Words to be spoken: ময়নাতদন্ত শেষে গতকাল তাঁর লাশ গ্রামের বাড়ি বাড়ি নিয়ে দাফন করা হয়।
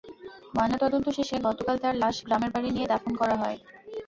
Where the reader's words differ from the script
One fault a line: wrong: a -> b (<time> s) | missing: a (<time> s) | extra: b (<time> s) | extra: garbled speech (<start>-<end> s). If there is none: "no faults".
missing: বাড়ি (2.7 s)